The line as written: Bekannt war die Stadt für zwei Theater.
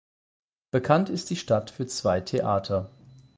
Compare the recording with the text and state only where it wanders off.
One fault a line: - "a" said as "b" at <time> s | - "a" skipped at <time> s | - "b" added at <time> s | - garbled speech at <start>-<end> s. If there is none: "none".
- "war" said as "ist" at 1.1 s